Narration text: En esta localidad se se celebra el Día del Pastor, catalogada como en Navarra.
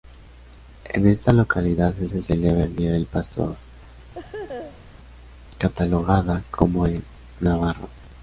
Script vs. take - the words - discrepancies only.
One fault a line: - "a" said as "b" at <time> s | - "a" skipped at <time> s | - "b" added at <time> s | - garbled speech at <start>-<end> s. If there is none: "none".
none